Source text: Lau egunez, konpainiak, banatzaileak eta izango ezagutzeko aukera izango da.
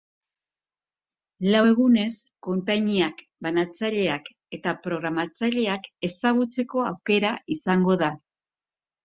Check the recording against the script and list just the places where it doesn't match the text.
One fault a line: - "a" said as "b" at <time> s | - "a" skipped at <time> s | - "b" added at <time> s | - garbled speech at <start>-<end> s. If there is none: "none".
- "izango" said as "programatzaileak" at 4.9 s